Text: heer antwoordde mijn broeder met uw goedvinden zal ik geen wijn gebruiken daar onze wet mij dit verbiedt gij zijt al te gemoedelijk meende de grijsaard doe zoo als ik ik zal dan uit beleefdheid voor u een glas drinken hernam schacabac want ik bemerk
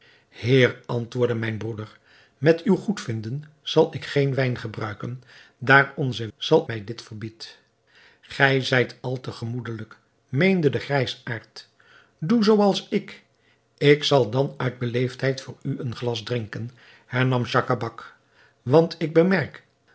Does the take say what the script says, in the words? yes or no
no